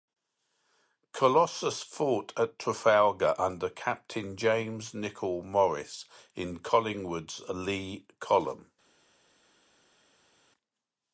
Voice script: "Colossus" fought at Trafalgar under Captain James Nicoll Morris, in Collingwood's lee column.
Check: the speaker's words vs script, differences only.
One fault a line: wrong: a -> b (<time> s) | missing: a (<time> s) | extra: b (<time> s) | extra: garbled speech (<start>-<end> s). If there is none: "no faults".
no faults